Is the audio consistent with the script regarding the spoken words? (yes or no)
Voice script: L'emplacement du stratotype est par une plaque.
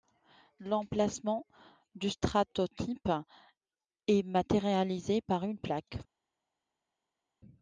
no